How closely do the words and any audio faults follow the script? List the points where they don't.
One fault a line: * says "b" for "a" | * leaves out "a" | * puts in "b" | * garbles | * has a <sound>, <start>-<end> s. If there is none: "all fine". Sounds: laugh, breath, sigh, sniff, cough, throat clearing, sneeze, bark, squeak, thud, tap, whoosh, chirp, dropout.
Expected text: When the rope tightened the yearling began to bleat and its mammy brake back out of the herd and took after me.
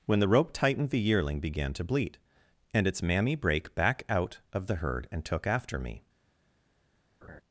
* has a laugh, 7.2-7.4 s